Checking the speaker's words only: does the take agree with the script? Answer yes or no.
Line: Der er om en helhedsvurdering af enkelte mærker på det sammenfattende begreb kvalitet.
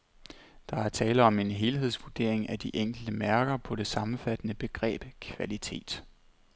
no